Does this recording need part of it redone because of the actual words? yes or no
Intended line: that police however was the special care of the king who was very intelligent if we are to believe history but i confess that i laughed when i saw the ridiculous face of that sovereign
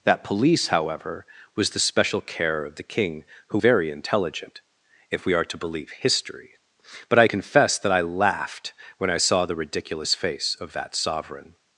yes